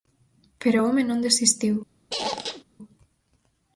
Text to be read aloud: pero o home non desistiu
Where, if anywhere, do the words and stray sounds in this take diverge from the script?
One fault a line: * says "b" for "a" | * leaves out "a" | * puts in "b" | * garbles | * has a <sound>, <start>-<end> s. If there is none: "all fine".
* has a squeak, 2.1-2.6 s